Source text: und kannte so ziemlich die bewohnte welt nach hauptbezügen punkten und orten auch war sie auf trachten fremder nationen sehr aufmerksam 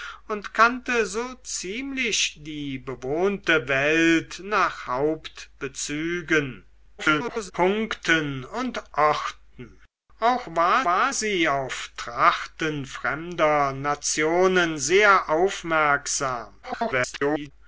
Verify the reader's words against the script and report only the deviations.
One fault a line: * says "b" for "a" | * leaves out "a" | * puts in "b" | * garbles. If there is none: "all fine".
* garbles
* puts in "war"
* garbles